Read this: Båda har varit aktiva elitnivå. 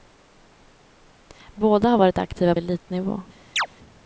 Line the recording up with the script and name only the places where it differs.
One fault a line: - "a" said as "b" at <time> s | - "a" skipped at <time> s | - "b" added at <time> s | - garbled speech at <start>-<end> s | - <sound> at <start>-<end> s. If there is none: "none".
- chirp at 3.6-3.7 s